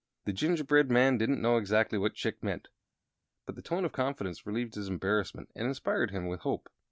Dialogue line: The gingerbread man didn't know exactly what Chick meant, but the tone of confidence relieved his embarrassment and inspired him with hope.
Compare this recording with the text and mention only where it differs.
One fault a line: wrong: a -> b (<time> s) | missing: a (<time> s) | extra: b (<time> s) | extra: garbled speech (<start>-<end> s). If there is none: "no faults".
no faults